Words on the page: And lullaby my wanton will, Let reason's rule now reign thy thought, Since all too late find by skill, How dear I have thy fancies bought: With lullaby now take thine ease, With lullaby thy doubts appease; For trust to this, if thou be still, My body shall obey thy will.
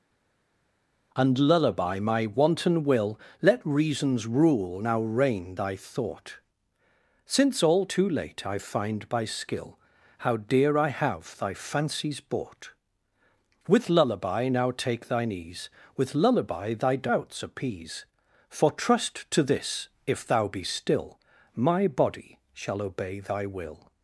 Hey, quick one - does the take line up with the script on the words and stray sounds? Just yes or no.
no